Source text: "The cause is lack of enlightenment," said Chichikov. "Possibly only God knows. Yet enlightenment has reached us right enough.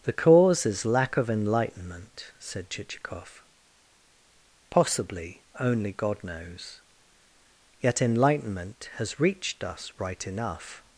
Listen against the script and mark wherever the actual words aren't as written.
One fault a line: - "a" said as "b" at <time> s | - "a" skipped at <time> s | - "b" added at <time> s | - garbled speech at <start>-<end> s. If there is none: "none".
none